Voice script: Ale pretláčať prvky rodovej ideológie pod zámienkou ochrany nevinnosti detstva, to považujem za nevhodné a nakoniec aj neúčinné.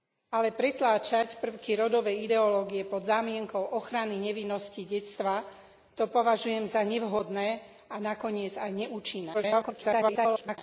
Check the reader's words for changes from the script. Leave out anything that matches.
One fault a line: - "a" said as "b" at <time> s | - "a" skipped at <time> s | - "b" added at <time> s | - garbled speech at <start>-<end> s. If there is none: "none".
- garbled speech at 9.3-10.6 s